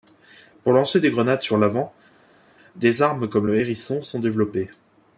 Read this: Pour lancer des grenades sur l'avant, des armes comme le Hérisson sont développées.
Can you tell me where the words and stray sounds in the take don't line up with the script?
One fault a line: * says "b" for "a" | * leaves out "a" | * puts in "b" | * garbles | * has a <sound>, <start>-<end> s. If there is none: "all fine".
all fine